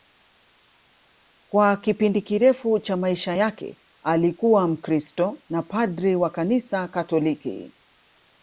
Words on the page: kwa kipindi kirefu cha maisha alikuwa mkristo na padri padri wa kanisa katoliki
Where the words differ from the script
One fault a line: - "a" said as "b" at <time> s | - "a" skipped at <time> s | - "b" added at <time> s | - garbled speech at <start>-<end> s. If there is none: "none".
- "yake" added at 3.3 s
- "padri" skipped at 6.2 s